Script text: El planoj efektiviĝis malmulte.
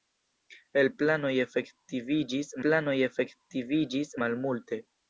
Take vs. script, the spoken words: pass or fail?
fail